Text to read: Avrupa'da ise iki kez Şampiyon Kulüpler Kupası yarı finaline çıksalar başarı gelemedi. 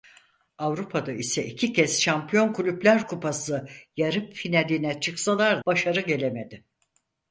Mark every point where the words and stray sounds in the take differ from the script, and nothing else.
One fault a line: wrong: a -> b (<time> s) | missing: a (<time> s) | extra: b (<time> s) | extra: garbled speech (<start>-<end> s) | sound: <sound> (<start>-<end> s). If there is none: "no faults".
no faults